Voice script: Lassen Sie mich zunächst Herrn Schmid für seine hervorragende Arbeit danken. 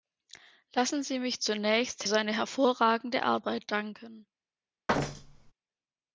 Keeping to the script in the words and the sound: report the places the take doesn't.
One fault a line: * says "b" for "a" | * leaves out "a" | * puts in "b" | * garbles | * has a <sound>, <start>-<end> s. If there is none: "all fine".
* leaves out "Herrn Schmid für"
* has a thud, 4.9-5.5 s